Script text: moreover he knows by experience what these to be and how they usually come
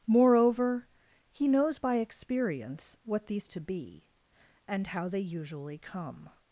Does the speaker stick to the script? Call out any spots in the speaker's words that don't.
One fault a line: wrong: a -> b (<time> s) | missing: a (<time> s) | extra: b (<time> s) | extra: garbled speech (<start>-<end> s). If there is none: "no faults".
no faults